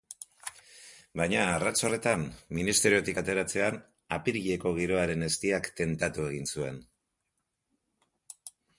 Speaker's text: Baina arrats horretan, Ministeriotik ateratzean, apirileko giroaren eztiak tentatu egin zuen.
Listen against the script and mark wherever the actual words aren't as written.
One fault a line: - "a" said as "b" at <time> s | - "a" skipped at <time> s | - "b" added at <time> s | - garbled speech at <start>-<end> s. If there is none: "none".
none